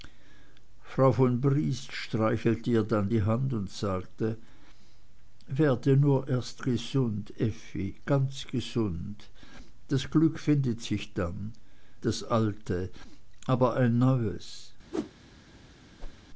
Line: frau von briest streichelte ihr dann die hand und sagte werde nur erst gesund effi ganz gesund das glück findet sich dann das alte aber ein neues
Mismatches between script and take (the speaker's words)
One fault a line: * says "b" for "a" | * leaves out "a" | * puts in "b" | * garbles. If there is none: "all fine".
all fine